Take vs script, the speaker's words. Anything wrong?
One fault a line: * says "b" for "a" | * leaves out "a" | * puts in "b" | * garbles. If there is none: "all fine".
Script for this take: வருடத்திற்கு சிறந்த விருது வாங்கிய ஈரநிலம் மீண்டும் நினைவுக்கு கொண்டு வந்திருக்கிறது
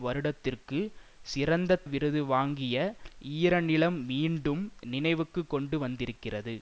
all fine